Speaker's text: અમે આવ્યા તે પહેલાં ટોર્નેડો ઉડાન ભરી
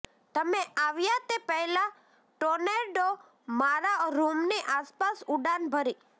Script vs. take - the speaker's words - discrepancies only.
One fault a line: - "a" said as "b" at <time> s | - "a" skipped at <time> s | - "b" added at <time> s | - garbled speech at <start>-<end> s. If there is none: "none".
- "અમે" said as "તમે" at 0.3 s
- "મારા રૂમની આસપાસ" added at 3.6 s